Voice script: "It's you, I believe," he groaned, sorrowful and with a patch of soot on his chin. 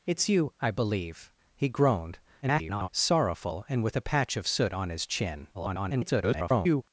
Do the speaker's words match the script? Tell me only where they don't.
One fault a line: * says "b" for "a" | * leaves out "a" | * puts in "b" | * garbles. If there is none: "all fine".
* garbles
* garbles